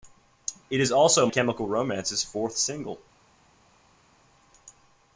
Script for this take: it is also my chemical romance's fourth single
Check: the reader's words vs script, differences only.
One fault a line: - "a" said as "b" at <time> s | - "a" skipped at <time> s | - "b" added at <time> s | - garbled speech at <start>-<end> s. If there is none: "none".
- "my" skipped at 1.3 s